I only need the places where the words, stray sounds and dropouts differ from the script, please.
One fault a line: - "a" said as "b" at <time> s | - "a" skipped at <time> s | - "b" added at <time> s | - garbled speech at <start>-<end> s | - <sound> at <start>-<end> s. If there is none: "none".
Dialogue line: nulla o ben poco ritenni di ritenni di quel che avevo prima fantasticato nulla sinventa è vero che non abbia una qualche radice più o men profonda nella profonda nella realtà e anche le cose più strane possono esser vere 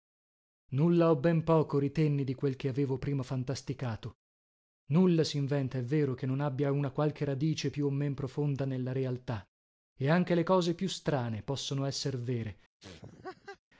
- "ritenni di" skipped at 2.3 s
- "profonda nella" skipped at 8.9 s
- laugh at 12.8-13.6 s